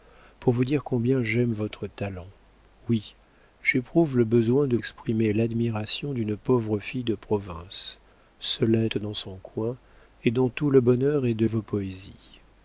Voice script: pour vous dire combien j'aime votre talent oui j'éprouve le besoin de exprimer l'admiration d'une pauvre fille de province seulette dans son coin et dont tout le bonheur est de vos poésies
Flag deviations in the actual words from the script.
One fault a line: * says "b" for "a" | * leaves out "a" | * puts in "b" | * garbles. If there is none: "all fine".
all fine